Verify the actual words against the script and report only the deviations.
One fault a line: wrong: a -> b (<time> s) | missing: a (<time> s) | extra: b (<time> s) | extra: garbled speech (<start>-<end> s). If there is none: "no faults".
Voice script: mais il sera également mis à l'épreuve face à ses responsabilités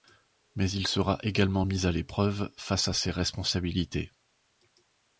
no faults